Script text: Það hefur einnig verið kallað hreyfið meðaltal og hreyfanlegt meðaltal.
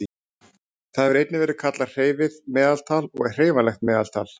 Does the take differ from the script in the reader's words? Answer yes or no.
no